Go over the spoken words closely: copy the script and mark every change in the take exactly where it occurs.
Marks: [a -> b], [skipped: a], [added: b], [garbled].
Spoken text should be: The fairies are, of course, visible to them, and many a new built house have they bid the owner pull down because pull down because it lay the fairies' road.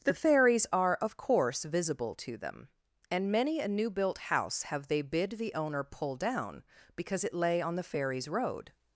The fairies are, of course, visible to them, and many a new built house have they bid the owner pull down because [skipped: pull down because] it lay [added: on] the fairies' road.